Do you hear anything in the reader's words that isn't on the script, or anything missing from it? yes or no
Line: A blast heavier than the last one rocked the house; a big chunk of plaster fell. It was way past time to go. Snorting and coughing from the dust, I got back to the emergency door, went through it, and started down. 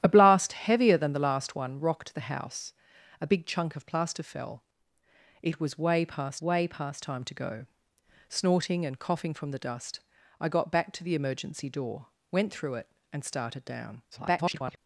yes